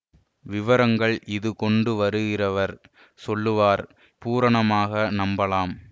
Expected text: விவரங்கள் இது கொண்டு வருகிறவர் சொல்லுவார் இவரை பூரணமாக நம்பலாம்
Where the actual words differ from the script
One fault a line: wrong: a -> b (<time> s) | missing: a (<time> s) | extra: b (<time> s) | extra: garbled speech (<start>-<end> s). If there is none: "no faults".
missing: இவரை (3.8 s)